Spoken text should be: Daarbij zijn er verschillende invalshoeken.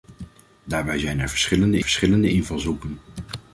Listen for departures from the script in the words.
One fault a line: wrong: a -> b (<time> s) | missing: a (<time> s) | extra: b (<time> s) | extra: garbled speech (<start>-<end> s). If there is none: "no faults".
extra: verschillende (1.8 s)